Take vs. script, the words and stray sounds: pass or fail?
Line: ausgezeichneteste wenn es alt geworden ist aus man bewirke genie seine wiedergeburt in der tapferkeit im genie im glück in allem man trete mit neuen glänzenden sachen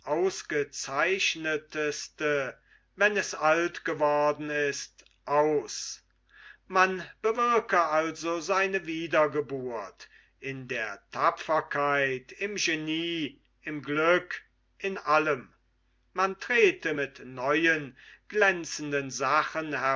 fail